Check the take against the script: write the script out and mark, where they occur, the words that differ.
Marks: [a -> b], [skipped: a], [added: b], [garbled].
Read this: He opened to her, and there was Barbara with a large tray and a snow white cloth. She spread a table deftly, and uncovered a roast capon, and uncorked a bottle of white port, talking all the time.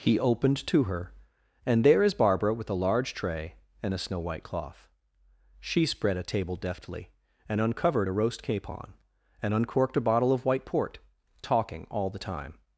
He opened to her, and there [was -> is] Barbara with a large tray and a snow white cloth. She spread a table deftly, and uncovered a roast capon, and uncorked a bottle of white port, talking all the time.